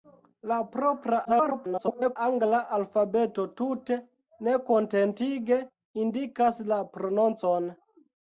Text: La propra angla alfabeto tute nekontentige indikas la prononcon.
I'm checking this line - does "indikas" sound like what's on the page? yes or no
yes